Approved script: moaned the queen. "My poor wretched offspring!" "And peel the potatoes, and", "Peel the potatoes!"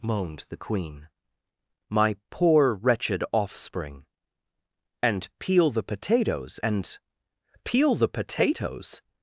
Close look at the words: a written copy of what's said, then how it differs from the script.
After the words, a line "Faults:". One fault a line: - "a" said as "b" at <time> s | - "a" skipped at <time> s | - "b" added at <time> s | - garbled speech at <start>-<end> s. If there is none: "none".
moaned the queen. "My poor wretched offspring!" "And peel the potatoes, and", "Peel the potatoes!"
Faults:
none